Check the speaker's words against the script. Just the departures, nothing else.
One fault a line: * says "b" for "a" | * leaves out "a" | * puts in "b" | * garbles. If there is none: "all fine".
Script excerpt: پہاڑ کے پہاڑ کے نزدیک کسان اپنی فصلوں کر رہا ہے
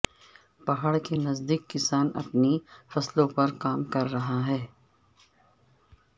* leaves out "پہاڑ کے"
* puts in "پر کام"